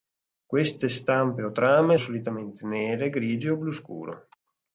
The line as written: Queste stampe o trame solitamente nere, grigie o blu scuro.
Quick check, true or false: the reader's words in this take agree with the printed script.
true